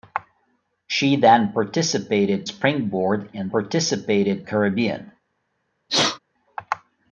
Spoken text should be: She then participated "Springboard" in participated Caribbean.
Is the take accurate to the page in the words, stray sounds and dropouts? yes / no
no